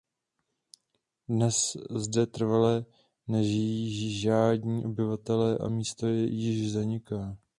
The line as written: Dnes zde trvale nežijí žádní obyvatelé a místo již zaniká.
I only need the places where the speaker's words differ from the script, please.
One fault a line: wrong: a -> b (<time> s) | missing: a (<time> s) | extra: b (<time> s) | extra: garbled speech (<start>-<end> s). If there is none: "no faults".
no faults